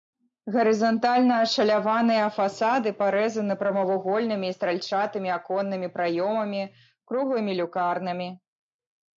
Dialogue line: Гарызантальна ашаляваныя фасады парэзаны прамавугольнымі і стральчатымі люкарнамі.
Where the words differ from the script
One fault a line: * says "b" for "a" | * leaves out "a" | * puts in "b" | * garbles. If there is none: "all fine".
* puts in "аконнымі праёмамі круглымі"